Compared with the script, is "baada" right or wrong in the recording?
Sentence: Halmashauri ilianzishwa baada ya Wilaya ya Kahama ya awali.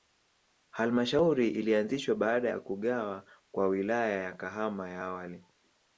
right